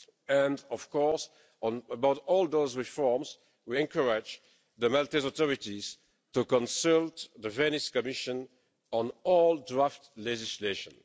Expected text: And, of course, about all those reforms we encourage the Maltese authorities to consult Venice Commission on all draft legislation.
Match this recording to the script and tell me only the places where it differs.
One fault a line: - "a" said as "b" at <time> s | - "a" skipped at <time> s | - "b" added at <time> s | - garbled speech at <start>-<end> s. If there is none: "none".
- "the" added at 7.4 s